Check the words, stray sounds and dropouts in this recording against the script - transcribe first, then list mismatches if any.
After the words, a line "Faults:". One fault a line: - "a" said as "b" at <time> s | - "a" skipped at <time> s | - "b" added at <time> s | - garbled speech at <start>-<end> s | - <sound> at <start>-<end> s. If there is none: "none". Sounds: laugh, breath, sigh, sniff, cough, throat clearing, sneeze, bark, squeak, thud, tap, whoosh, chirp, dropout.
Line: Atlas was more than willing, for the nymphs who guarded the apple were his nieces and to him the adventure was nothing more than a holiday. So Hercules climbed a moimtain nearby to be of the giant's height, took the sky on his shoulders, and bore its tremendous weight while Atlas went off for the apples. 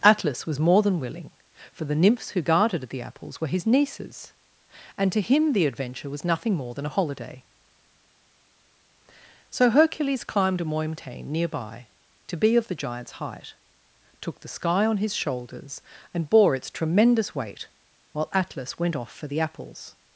Atlas was more than willing, for the nymphs who guarded the apples were his nieces and to him the adventure was nothing more than a holiday. So Hercules climbed a moimtain nearby to be of the giant's height, took the sky on his shoulders, and bore its tremendous weight while Atlas went off for the apples.
Faults:
- "apple" said as "apples" at 3.0 s